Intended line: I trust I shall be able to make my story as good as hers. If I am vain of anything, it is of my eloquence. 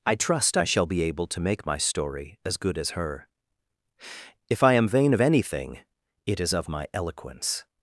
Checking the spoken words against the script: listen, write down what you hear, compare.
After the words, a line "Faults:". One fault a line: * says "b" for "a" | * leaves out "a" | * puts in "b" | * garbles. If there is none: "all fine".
I trust I shall be able to make my story as good as her. If I am vain of anything, it is of my eloquence.
Faults:
* says "her" for "hers"